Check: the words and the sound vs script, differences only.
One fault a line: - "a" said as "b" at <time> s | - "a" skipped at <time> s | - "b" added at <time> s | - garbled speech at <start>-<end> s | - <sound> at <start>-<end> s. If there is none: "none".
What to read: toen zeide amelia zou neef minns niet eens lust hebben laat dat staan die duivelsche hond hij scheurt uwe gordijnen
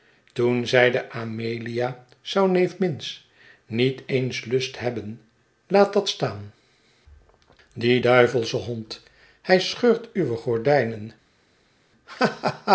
none